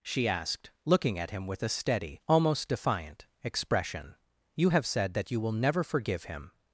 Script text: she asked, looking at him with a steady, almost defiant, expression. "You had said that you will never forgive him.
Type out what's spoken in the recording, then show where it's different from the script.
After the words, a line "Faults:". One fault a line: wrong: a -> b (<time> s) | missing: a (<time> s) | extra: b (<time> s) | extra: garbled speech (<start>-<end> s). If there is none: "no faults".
she asked, looking at him with a steady, almost defiant, expression. "You have said that you will never forgive him.
Faults:
wrong: had -> have (4.7 s)